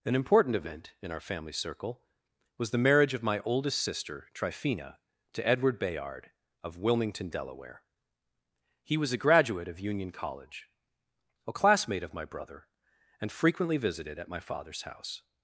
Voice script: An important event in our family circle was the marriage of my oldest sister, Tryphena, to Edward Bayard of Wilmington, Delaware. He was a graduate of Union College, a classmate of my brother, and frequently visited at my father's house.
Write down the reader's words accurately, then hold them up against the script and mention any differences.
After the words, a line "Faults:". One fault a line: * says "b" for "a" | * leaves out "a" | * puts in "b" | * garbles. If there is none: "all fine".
An important event in our family circle was the marriage of my oldest sister, Tryphena, to Edward Bayard of Wilmington, Delaware. He was a graduate of Union College, a classmate of my brother, and frequently visited at my father's house.
Faults:
all fine